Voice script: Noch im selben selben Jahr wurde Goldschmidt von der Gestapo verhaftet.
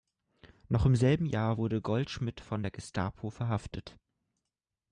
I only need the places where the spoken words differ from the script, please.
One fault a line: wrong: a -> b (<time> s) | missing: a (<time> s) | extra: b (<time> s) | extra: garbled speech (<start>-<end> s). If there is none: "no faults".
missing: selben (1.3 s)